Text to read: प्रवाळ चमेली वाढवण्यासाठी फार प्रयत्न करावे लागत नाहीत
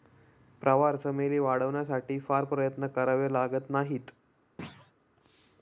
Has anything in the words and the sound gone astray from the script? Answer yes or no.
yes